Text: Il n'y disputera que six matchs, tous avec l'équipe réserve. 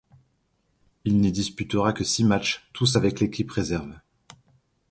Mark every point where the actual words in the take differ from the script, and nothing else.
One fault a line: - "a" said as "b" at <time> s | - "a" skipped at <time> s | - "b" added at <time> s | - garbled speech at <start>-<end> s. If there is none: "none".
none